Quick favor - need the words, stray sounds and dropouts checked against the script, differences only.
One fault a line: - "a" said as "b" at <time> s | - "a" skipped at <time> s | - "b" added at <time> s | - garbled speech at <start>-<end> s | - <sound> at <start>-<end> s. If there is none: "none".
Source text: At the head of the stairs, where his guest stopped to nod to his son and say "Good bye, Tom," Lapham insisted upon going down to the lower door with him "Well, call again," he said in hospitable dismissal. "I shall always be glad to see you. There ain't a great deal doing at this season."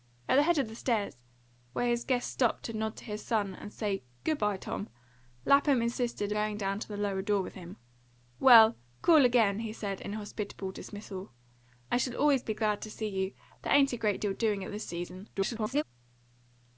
- "upon" skipped at 6.3 s
- garbled speech at 15.4-15.8 s